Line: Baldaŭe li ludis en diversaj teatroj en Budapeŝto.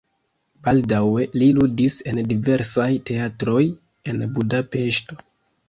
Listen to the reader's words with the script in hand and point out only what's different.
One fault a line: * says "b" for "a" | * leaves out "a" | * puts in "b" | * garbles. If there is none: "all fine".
all fine